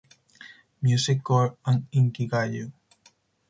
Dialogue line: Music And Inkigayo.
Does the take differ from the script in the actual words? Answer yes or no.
yes